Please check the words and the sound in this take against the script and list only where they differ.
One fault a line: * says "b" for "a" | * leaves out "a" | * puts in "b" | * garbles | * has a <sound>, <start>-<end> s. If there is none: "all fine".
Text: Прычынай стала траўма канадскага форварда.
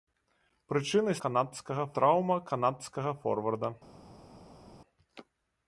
* says "канадскага" for "стала"